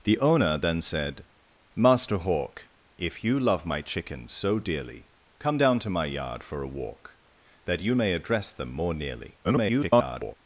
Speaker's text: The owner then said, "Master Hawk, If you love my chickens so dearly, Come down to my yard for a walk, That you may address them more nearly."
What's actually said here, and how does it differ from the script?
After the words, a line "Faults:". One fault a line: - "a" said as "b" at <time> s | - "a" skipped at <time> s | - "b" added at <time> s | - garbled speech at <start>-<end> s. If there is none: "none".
The owner then said, "Master Hawk, If you love my chickens so dearly, Come down to my yard for a walk, That you may address them more nearly." [garbled]
Faults:
- garbled speech at 9.4-10.4 s